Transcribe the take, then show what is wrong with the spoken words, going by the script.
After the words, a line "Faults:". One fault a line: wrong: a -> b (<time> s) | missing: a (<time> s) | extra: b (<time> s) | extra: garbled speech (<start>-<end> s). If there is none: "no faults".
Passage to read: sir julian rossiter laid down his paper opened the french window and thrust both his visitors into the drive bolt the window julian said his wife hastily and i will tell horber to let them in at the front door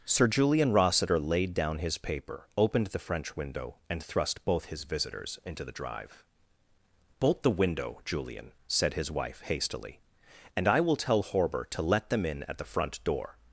sir julian rossiter laid down his paper opened the french window and thrust both his visitors into the drive bolt the window julian said his wife hastily and i will tell horber to let them in at the front door
Faults:
no faults